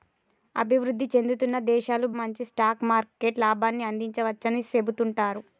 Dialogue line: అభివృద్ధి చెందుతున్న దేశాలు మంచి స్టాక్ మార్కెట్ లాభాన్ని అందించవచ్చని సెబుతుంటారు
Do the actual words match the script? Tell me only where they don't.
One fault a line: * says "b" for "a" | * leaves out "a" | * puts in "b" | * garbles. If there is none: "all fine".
all fine